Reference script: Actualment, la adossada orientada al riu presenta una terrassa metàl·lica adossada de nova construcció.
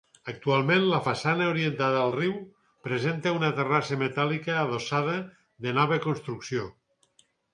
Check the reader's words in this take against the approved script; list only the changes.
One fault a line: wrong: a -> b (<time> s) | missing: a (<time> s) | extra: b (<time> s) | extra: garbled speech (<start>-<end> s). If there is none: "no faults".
wrong: adossada -> façana (1.0 s)